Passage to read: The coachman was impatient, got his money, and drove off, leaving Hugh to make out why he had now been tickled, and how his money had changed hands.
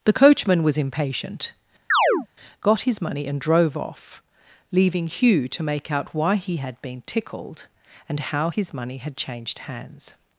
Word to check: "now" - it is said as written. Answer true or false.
false